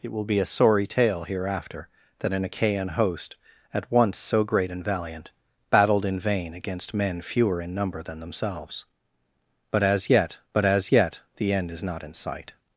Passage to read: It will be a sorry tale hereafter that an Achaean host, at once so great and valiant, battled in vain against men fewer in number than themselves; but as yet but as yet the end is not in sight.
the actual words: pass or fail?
pass